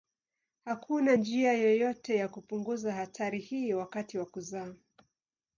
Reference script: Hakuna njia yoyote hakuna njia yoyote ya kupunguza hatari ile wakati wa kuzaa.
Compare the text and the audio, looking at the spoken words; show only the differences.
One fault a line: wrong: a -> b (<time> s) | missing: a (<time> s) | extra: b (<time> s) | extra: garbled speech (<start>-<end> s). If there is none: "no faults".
missing: hakuna njia yoyote (2.1 s)
wrong: ile -> hii (3.4 s)